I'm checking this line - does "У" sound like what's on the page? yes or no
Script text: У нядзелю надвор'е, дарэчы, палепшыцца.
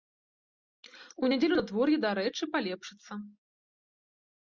yes